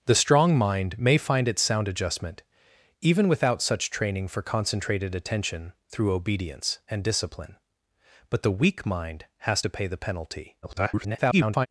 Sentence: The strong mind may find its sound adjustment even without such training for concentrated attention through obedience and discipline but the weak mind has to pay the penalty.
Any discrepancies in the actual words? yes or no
yes